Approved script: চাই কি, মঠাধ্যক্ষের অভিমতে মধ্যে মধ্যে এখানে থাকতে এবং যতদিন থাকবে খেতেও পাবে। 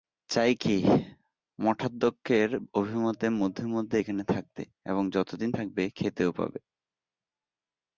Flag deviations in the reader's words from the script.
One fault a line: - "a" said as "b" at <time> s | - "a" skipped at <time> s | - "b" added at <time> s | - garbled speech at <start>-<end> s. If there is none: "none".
none